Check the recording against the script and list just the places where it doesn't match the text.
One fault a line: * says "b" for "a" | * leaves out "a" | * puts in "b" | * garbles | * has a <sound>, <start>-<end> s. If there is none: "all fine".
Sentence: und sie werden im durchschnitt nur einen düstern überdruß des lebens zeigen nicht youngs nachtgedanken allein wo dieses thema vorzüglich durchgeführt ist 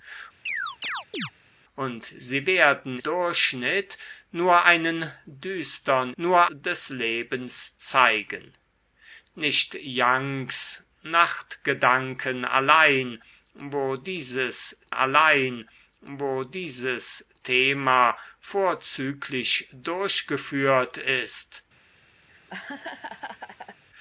* has a chirp, 0.5-1.3 s
* leaves out "im"
* says "nur" for "überdruß"
* puts in "allein wo dieses"
* has a laugh, 22.3-23.8 s